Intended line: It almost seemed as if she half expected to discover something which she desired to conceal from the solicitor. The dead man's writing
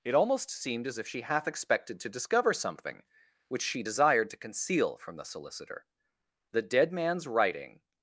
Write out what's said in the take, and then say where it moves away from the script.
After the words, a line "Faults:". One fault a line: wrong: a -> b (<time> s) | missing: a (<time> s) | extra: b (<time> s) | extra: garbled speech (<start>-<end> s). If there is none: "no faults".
It almost seemed as if she half expected to discover something which she desired to conceal from the solicitor. The dead man's writing
Faults:
no faults